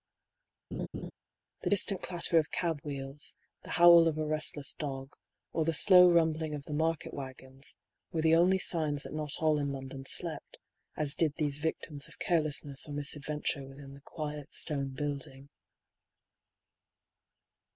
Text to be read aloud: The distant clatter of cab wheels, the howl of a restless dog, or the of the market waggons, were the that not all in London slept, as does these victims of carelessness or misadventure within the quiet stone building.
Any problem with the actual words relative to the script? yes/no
yes